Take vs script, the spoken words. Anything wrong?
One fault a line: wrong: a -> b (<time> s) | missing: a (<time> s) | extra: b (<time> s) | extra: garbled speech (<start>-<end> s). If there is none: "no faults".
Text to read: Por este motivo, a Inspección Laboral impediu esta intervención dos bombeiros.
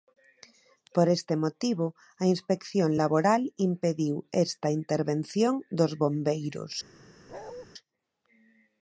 no faults